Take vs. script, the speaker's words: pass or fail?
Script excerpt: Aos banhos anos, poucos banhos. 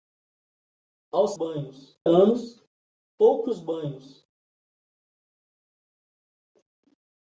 pass